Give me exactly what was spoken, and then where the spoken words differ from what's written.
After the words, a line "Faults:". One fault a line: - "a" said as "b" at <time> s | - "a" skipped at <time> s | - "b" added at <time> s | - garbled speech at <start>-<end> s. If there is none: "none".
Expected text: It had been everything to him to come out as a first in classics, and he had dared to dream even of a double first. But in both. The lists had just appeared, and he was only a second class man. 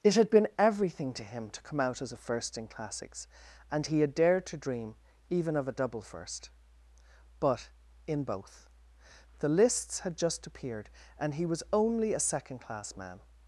It had been everything to him to come out as a first in classics, and he had dared to dream even of a double first. But in both. The lists had just appeared, and he was only a second class man.
Faults:
none